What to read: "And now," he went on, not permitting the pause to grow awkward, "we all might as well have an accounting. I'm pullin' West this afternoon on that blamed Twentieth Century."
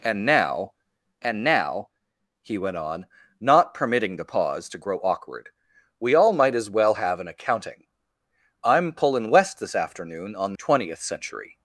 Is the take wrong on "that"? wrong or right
wrong